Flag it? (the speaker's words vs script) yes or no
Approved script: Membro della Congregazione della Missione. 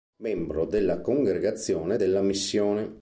no